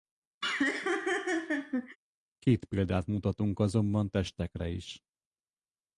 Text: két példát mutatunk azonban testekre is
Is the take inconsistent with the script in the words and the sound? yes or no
yes